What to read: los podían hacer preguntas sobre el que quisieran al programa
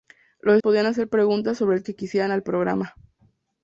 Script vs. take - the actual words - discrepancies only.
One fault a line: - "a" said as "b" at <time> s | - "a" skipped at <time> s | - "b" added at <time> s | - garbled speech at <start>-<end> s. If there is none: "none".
none